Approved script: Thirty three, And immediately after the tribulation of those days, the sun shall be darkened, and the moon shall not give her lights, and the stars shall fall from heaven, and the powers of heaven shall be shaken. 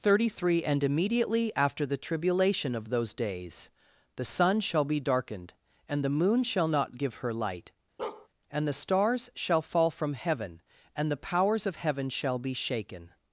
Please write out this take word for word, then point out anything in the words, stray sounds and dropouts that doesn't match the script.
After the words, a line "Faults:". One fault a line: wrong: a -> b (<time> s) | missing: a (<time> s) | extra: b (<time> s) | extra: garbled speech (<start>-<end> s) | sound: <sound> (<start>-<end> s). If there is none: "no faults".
Thirty three, And immediately after the tribulation of those days, the sun shall be darkened, and the moon shall not give her light, and the stars shall fall from heaven, and the powers of heaven shall be shaken.
Faults:
wrong: lights -> light (7.3 s)
sound: bark (8.0-8.3 s)